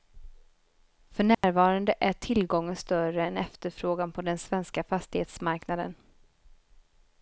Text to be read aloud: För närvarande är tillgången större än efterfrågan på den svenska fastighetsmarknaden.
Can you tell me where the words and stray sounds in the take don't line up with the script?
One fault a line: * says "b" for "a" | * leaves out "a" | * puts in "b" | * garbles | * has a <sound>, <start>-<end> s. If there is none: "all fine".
* has a dropout, 1.3-1.4 s